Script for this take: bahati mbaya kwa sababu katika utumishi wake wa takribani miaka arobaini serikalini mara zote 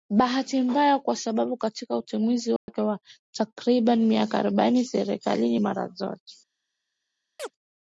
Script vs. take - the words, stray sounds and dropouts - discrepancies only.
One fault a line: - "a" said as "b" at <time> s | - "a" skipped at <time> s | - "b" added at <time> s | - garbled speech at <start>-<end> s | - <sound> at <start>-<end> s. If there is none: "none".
- dropout at 2.6-2.7 s
- chirp at 7.4-7.5 s